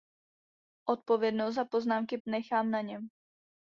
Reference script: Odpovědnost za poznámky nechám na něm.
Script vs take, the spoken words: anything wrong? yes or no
no